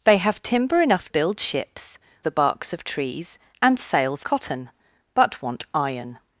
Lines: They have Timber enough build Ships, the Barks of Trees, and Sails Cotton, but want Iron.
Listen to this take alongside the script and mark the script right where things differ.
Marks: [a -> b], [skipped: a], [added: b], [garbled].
They have Timber enough build Ships, the Barks of Trees, and Sails Cotton, but want Iron.